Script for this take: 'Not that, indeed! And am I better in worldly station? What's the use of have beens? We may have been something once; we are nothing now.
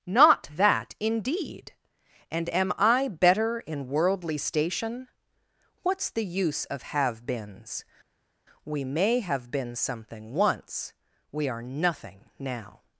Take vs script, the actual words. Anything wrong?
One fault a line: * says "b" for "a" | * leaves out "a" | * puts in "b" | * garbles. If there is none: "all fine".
all fine